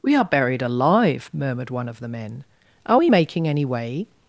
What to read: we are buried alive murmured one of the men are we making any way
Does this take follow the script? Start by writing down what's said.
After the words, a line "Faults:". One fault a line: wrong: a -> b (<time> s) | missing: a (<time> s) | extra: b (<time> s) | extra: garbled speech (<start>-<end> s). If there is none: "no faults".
we are buried alive murmured one of the men are we making any way
Faults:
no faults